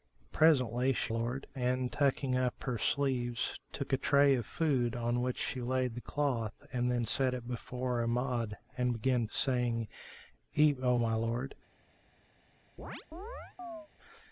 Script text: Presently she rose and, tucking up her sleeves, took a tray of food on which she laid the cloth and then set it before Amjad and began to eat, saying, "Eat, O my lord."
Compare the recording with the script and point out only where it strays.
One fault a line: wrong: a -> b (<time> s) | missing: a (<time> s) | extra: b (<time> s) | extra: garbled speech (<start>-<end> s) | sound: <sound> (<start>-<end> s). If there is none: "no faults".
wrong: rose -> lord (1.1 s)
missing: to eat (9.3 s)
sound: chirp (12.8-13.9 s)